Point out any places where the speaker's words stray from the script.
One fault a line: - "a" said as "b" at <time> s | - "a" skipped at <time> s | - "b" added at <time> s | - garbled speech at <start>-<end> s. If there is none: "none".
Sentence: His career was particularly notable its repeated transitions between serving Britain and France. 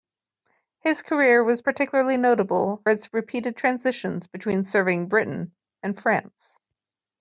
none